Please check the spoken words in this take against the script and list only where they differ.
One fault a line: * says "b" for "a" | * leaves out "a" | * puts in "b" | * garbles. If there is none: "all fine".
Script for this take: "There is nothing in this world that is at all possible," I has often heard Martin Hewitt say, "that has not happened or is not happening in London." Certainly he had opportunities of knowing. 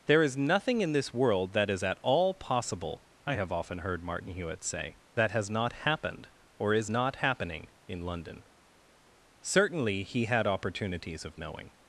* says "have" for "has"